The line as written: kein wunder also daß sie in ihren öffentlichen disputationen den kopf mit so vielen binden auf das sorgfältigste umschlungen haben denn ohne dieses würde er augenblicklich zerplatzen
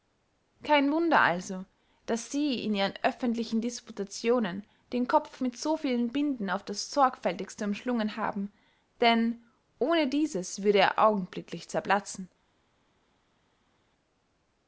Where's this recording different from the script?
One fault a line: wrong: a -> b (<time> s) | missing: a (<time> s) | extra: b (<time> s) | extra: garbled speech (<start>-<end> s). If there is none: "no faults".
no faults